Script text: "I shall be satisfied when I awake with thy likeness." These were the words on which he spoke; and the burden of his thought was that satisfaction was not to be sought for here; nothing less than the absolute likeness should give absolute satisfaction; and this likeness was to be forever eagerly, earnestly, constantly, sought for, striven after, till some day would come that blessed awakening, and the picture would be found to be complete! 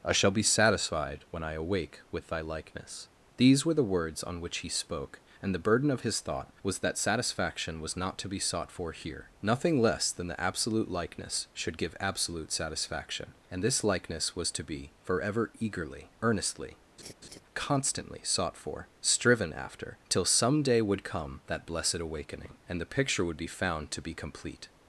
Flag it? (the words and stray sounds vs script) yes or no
yes